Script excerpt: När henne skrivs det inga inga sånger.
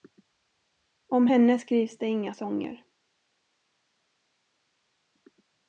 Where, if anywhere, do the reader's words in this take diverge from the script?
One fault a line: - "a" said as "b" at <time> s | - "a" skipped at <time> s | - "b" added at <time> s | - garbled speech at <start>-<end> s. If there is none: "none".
- "När" said as "Om" at 1.1 s
- "inga" skipped at 2.3 s